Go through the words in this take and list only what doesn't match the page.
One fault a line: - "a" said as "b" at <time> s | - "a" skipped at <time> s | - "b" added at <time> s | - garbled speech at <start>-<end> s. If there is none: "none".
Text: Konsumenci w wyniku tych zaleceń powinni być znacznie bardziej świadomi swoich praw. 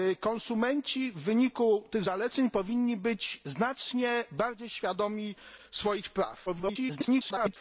- garbled speech at 6.5-7.6 s